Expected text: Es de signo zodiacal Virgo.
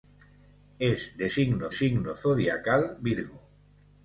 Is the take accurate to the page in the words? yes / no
no